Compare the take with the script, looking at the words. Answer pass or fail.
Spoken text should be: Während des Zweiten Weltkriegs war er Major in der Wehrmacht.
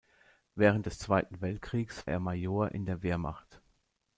fail